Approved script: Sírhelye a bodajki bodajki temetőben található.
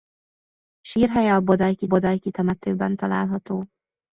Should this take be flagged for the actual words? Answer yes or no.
no